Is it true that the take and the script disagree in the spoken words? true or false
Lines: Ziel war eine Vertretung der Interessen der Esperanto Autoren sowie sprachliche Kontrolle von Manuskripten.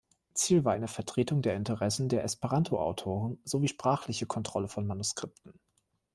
false